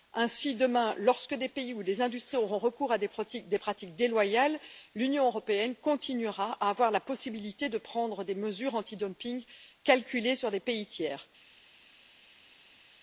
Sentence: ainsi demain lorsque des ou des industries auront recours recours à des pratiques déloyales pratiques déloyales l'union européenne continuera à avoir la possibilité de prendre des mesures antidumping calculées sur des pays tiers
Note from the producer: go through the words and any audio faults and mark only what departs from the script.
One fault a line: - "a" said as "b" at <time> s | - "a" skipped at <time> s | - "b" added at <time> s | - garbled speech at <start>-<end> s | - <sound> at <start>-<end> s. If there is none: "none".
- "pays" added at 1.5 s
- "recours" skipped at 2.9 s
- "pratiques déloyales" skipped at 4.6 s